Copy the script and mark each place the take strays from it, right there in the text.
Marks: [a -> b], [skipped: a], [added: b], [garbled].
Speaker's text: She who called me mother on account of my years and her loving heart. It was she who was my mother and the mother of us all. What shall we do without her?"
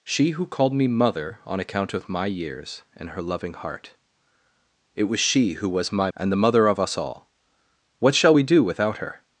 She who called me mother on account of my years and her loving heart. It was she who was my [skipped: mother] and the mother of us all. What shall we do without her?"